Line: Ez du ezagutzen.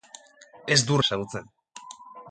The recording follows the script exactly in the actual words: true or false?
true